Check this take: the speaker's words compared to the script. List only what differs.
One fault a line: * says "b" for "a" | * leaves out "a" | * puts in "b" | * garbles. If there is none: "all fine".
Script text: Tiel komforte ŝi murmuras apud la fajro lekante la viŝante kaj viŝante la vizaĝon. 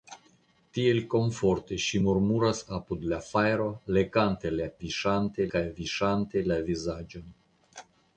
all fine